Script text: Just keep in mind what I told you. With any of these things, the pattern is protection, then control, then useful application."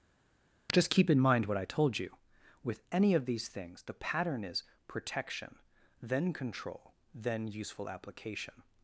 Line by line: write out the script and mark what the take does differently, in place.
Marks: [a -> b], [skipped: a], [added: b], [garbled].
Just keep in mind what I told you. With any of these things, the pattern is protection, then control, then useful application."